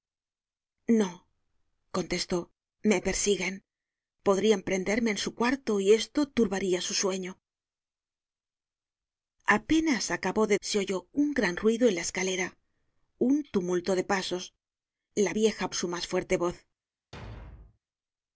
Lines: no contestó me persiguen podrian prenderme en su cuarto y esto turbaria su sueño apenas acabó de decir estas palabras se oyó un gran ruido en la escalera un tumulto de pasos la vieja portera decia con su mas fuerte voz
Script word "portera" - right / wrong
wrong